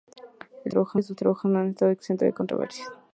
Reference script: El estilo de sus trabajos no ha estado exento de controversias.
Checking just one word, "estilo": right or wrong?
wrong